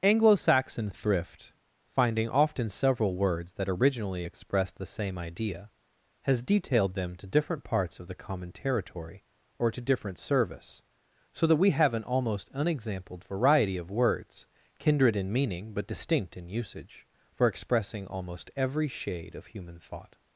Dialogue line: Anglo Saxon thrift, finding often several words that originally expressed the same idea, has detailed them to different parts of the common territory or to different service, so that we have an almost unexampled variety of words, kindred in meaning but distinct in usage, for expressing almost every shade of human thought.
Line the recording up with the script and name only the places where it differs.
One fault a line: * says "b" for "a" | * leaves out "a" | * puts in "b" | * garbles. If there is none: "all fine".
all fine